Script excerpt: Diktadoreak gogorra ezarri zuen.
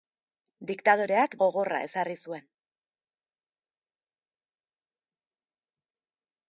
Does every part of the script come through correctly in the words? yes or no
yes